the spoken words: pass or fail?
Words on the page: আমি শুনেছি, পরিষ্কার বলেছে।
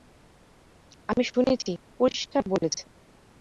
pass